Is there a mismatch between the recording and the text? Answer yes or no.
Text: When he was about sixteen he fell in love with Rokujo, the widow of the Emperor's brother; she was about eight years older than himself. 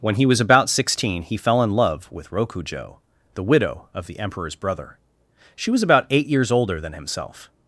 no